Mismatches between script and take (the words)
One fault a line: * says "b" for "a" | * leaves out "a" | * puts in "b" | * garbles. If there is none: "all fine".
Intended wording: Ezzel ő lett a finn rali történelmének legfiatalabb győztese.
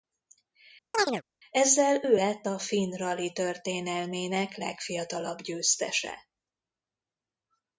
all fine